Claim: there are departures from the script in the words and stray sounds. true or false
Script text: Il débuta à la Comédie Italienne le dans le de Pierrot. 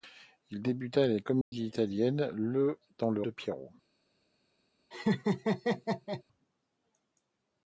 true